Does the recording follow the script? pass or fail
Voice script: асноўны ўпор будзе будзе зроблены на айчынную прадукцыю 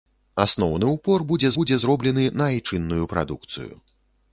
pass